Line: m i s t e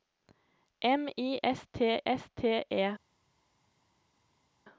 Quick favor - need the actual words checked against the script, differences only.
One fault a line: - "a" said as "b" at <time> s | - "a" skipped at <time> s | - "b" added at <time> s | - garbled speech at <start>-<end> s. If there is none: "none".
- "s t" added at 2.1 s